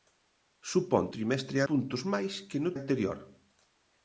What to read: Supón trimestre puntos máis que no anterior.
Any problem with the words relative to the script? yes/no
no